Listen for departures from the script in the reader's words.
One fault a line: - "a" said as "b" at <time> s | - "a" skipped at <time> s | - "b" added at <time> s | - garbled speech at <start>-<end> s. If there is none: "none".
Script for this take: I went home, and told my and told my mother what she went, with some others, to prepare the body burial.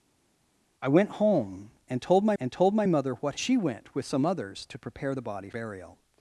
none